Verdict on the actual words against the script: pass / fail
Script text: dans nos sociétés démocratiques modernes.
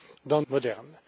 fail